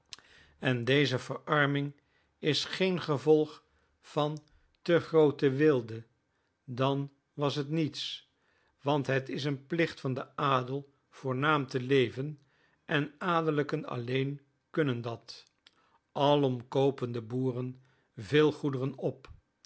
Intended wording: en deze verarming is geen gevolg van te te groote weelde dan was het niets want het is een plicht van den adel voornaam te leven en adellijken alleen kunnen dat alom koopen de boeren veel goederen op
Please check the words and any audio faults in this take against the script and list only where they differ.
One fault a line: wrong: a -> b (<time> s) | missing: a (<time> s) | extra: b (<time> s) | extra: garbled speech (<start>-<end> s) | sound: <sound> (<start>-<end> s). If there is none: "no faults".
missing: te (5.0 s)